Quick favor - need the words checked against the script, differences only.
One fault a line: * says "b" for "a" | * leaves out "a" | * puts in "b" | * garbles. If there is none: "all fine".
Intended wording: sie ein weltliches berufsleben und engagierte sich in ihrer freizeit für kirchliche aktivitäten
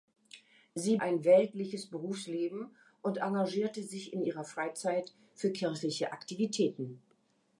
all fine